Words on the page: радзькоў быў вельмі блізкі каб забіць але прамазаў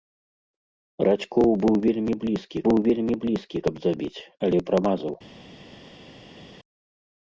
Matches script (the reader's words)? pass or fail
fail